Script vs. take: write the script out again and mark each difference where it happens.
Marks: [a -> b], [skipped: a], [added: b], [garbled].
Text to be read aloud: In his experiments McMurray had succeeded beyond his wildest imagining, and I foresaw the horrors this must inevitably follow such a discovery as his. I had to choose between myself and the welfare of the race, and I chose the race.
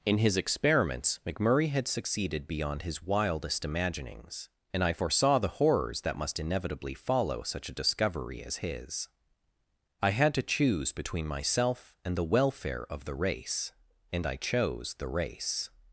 In his experiments McMurray had succeeded beyond his wildest [imagining, -> imaginings] and I foresaw the horrors [this -> that] must inevitably follow such a discovery as his. I had to choose between myself and the welfare of the race, and I chose the race.